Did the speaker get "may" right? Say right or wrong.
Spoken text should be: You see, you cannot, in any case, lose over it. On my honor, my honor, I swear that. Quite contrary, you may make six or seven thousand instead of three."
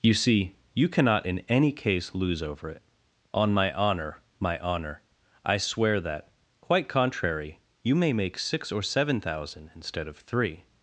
right